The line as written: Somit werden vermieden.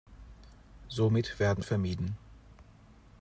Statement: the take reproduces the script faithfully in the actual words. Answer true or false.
true